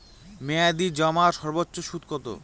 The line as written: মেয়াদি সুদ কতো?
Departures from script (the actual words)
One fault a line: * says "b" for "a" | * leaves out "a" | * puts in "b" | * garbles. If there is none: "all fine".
* puts in "জমার সর্বোচ্চ"